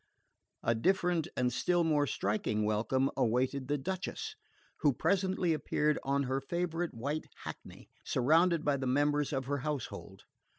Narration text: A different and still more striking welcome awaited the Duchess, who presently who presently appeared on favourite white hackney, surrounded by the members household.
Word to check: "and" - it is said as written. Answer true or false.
true